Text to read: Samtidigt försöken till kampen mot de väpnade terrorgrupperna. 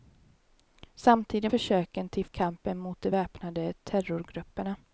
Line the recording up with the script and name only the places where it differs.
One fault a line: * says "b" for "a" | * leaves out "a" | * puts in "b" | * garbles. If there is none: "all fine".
all fine